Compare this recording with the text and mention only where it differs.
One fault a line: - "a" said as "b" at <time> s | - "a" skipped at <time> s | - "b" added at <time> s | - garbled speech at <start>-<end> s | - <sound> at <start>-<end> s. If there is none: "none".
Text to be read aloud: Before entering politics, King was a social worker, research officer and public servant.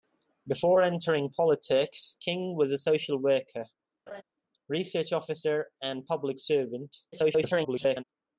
- laugh at 4.1-4.2 s
- garbled speech at 7.1-8.0 s